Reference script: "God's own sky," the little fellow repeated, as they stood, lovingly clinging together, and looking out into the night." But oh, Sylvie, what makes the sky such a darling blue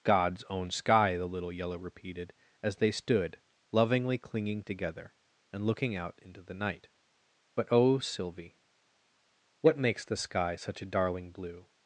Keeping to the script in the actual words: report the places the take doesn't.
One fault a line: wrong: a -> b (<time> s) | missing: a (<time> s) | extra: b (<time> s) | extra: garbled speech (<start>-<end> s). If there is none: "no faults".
wrong: fellow -> yellow (1.5 s)